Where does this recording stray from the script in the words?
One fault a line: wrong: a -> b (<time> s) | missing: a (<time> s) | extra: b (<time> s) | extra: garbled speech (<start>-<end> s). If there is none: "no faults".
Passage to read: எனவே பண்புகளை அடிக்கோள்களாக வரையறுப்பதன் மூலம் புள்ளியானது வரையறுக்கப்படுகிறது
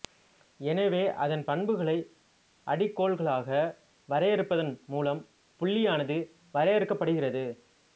extra: அதன் (1.2 s)